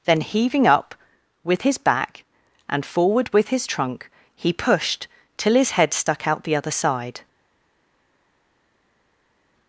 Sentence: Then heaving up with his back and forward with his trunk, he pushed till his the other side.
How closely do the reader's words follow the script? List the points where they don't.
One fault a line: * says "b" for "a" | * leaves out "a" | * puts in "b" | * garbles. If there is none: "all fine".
* puts in "head stuck out"